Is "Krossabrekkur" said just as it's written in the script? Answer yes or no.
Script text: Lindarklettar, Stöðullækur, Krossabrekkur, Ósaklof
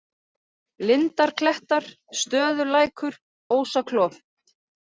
no